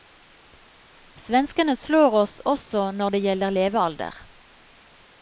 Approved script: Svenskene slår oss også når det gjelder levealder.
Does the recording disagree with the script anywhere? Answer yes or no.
no